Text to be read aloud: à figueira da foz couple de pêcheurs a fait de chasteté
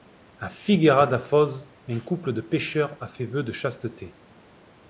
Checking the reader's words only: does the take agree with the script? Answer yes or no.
no